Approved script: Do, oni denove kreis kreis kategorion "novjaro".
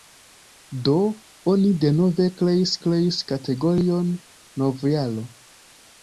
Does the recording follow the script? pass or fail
pass